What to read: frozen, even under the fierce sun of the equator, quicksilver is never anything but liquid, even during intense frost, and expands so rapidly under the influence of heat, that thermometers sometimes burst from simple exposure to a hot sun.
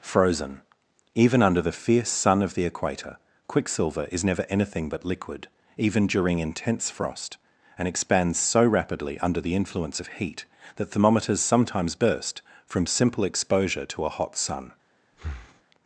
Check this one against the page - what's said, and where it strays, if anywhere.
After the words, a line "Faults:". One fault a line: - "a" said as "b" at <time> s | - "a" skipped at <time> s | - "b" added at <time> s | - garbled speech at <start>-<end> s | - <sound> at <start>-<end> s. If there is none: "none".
frozen, even under the fierce sun of the equator, quicksilver is never anything but liquid, even during intense frost, and expands so rapidly under the influence of heat, that thermometers sometimes burst from simple exposure to a hot sun.
Faults:
- breath at 15.1-15.6 s